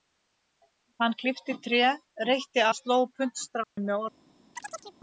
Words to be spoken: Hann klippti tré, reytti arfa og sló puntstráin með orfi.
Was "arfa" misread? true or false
true